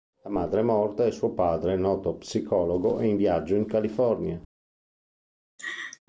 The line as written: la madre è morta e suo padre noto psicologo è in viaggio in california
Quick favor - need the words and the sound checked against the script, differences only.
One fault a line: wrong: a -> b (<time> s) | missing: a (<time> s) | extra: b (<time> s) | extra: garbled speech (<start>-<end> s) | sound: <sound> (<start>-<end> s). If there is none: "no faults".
sound: laugh (5.6-6.0 s)